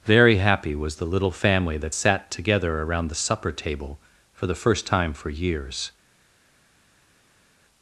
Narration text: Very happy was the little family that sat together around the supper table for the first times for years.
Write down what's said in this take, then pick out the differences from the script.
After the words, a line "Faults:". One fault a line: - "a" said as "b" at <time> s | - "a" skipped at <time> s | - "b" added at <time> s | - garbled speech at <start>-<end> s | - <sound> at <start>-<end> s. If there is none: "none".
Very happy was the little family that sat together around the supper table for the first time for years.
Faults:
- "times" said as "time" at 4.9 s